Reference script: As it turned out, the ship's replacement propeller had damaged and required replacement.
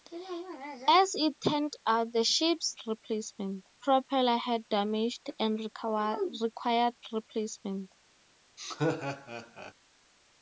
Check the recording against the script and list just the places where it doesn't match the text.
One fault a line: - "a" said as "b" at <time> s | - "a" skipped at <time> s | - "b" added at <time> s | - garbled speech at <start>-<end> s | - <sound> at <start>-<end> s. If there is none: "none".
- laugh at 8.6-9.7 s